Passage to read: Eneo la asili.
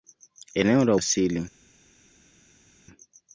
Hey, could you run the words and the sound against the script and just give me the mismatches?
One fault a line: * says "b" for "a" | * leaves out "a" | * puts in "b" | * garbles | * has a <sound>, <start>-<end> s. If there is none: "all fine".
all fine